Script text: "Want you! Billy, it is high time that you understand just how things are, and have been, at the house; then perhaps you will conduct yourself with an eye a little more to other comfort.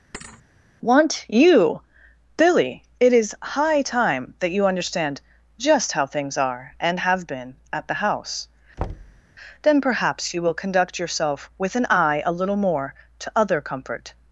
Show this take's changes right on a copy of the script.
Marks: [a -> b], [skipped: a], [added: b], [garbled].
"Want you! Billy, it is high time that you understand just how things are, and have been, at the house; then perhaps you will conduct yourself with an eye a little more to other comfort.